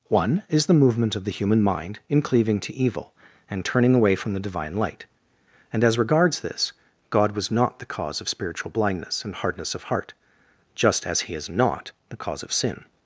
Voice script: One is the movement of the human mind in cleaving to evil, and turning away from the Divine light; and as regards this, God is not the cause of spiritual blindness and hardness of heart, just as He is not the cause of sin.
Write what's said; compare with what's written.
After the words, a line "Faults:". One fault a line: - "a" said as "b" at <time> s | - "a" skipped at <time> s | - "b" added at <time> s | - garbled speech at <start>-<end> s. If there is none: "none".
One is the movement of the human mind in cleaving to evil, and turning away from the Divine light; and as regards this, God was not the cause of spiritual blindness and hardness of heart, just as He is not the cause of sin.
Faults:
- "is" said as "was" at 7.3 s